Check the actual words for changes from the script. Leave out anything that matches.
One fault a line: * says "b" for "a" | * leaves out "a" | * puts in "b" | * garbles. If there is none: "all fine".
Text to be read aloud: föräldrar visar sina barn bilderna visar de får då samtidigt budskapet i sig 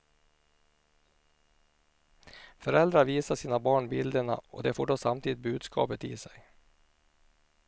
* says "och" for "visar"